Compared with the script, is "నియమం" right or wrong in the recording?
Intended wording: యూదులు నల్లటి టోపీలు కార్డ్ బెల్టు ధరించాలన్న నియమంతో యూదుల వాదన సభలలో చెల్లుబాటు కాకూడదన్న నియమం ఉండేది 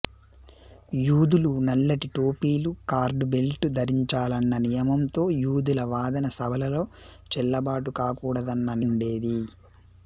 wrong